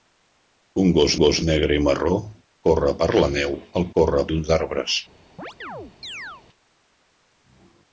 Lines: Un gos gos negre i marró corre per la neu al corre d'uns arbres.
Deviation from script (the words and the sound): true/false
true